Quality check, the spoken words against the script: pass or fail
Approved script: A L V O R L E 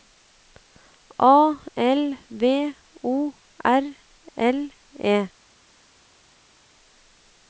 pass